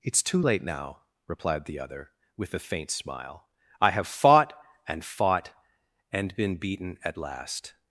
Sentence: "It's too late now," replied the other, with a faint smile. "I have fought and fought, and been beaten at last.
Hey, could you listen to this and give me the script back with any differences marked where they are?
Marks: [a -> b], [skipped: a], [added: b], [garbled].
"It's too late now," replied the other, with a faint smile. "I have fought and fought, and been beaten at last.